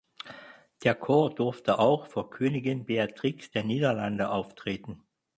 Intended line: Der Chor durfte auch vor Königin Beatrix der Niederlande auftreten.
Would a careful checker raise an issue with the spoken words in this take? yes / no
no